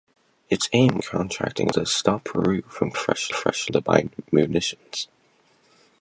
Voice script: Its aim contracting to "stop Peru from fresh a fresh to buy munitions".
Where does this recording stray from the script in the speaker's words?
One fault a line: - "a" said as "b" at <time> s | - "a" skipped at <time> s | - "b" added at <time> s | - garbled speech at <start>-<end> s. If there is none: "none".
none